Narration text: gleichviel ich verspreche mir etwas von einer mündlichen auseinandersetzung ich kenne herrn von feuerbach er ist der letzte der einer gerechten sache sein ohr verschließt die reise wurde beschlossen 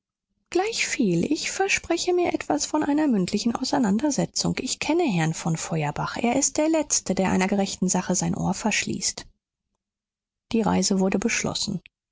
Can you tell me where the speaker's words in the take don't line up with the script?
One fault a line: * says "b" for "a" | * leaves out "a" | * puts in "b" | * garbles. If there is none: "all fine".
all fine